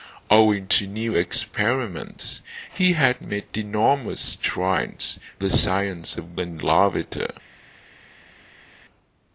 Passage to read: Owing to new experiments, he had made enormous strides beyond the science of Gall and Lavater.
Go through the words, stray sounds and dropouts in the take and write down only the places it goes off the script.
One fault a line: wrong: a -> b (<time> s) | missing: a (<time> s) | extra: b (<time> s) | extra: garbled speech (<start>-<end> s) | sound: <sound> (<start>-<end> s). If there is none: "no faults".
missing: beyond (5.2 s)
missing: Gall (6.4 s)